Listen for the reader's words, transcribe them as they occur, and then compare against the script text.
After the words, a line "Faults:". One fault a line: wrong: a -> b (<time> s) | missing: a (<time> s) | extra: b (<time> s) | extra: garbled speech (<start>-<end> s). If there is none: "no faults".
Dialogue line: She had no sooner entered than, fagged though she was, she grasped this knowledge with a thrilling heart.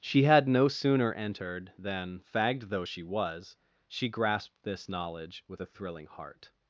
She had no sooner entered than, fagged though she was, she grasped this knowledge with a thrilling heart.
Faults:
no faults